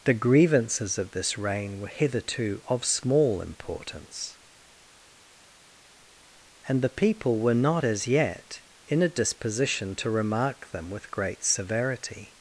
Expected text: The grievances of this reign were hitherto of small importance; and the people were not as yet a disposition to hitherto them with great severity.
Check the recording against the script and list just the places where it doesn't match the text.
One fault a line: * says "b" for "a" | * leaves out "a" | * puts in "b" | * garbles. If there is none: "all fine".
* puts in "in"
* says "remark" for "hitherto"